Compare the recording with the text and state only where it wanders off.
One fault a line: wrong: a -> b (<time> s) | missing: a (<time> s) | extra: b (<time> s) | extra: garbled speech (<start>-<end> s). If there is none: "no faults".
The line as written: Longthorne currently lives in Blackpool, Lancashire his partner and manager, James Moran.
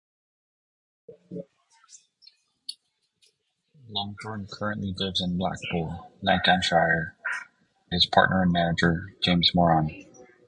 no faults